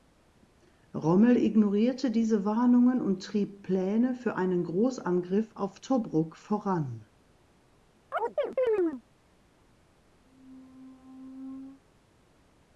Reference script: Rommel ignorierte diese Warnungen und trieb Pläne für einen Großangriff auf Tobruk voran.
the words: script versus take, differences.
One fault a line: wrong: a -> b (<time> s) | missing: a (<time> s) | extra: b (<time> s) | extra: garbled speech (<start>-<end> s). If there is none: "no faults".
no faults